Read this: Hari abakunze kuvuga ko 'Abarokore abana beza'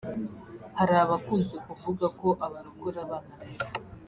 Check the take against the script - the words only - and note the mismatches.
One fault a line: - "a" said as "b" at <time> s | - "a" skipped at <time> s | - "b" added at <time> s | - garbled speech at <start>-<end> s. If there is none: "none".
none